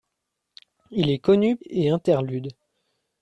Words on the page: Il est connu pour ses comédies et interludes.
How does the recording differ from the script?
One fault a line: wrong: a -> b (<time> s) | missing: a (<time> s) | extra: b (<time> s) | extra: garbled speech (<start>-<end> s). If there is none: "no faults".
missing: pour ses comédies (1.6 s)